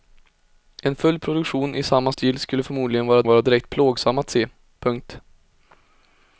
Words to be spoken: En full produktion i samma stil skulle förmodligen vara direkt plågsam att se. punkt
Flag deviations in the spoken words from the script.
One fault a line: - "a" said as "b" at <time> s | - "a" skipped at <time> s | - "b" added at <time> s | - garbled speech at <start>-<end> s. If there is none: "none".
- "vara" added at 3.2 s